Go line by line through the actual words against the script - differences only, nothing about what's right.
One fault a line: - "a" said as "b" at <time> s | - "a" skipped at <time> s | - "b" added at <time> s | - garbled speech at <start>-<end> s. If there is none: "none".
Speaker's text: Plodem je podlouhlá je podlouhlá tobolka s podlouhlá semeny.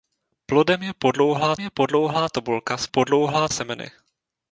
none